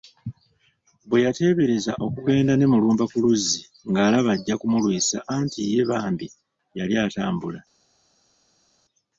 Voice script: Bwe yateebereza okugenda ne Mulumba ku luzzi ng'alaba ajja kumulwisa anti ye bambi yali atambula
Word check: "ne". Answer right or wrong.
right